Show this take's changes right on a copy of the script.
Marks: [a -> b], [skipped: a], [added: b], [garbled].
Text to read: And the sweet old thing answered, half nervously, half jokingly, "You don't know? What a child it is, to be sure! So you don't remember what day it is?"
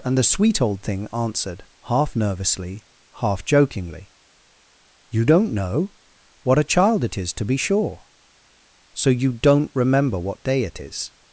And the sweet old thing answered, half nervously, half jokingly, "You don't know? What a child it is, to be sure! So you don't remember what day it is?"